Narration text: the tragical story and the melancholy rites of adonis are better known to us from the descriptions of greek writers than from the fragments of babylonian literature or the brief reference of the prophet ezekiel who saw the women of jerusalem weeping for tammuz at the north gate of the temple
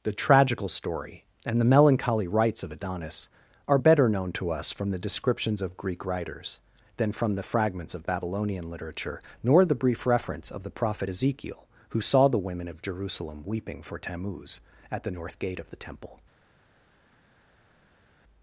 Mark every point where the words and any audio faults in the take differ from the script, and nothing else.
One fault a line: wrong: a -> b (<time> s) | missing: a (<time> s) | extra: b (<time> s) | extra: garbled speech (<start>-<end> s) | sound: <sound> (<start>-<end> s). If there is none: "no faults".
wrong: or -> nor (9.4 s)